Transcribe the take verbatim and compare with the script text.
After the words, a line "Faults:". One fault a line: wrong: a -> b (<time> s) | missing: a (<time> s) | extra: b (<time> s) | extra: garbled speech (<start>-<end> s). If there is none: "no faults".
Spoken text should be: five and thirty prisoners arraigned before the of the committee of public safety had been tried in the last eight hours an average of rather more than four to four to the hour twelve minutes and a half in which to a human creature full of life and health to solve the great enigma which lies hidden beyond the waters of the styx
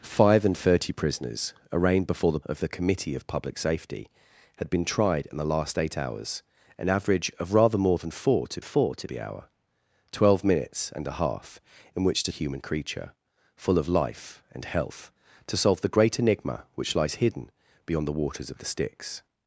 five and thirty prisoners arraigned before the of the committee of public safety had been tried in the last eight hours an average of rather more than four to four to the hour twelve minutes and a half in which to a human creature full of life and health to solve the great enigma which lies hidden beyond the waters of the styx
Faults:
no faults